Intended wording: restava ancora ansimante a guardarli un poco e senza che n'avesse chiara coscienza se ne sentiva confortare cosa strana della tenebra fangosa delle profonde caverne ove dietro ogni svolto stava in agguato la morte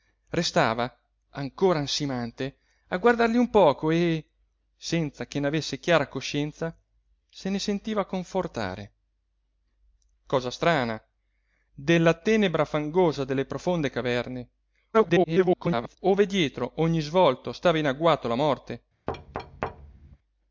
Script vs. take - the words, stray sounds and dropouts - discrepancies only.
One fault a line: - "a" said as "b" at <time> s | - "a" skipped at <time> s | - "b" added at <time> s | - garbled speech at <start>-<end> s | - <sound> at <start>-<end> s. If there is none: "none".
- garbled speech at 14.9-16.0 s
- thud at 19.1-20.2 s